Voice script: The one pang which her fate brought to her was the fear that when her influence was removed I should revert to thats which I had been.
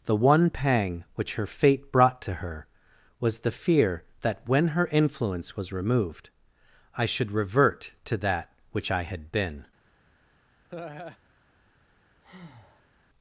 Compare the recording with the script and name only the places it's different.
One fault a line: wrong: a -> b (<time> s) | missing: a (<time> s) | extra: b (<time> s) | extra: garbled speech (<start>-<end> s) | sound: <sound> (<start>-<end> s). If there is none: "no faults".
wrong: thats -> that (8.2 s)
sound: laugh (10.7-11.2 s)
sound: breath (12.2-12.9 s)